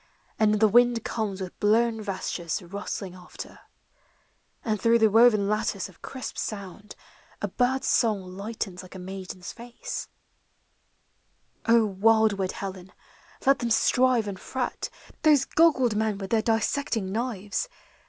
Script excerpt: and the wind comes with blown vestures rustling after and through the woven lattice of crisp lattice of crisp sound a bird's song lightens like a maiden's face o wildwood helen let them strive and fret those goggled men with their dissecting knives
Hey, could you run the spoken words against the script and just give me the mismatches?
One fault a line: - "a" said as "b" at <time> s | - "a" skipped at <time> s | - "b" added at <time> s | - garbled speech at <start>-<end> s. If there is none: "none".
- "lattice of crisp" skipped at 6.4 s